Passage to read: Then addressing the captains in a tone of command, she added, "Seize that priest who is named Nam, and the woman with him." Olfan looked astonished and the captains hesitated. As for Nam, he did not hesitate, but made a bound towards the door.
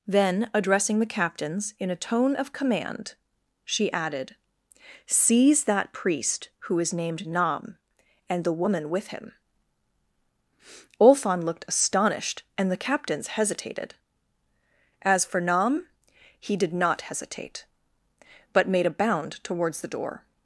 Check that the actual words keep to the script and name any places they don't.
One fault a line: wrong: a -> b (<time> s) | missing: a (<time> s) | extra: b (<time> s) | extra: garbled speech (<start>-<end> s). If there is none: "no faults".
no faults